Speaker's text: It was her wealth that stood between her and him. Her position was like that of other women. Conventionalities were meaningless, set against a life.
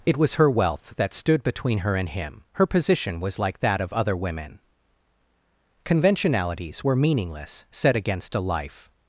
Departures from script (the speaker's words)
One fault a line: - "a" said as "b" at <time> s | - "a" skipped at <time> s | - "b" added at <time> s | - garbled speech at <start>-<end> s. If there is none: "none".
none